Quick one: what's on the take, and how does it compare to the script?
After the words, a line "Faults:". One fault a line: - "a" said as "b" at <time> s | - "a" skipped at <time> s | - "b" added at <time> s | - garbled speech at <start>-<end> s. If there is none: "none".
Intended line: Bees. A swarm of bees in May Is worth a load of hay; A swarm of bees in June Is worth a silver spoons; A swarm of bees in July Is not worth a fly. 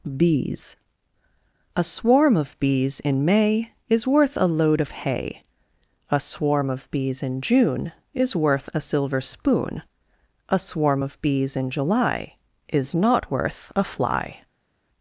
Bees. A swarm of bees in May Is worth a load of hay; A swarm of bees in June Is worth a silver spoon; A swarm of bees in July Is not worth a fly.
Faults:
- "spoons" said as "spoon" at 9.2 s